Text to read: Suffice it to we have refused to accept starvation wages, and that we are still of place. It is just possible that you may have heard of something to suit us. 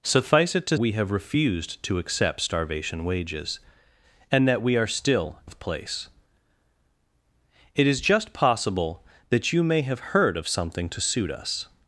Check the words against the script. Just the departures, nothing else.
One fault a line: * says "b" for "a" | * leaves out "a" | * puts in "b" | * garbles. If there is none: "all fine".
all fine